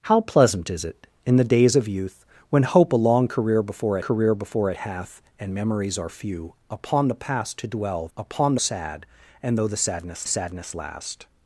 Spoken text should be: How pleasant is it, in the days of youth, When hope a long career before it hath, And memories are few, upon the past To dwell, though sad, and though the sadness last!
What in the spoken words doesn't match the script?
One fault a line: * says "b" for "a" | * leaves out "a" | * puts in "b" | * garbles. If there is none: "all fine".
* puts in "career before"
* says "upon" for "though"
* puts in "sadness"